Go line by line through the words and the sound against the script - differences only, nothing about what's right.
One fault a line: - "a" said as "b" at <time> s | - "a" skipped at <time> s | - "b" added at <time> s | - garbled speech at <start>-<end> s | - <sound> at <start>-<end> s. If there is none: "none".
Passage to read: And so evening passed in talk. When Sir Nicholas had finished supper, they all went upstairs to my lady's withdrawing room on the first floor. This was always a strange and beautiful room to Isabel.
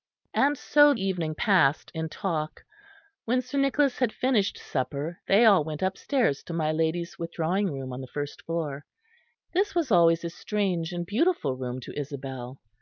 none